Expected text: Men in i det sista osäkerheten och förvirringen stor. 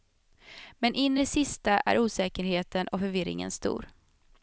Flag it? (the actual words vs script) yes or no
yes